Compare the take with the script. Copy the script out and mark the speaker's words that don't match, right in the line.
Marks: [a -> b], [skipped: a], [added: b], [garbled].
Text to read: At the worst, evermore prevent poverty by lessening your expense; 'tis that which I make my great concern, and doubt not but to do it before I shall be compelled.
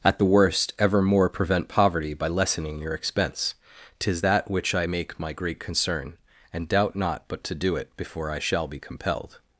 At the worst, evermore prevent poverty by lessening your expense; 'tis that which I make my great concern, and doubt not but to do it before I shall be compelled.